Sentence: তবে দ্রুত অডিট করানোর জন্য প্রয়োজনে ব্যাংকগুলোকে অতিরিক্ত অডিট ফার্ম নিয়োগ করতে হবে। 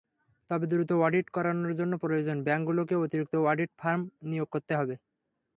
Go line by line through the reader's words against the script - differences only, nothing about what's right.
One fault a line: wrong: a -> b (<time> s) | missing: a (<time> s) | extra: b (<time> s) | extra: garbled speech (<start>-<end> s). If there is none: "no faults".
no faults